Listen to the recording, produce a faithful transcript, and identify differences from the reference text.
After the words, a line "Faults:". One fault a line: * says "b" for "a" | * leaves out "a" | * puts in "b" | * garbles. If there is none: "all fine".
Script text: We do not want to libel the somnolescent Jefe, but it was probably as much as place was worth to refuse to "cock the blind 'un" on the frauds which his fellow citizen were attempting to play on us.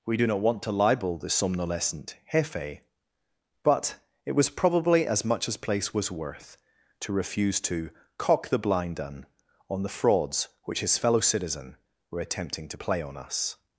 We do not want to libel the somnolescent Jefe, but it was probably as much as place was worth to refuse to "cock the blind 'un" on the frauds which his fellow citizen were attempting to play on us.
Faults:
all fine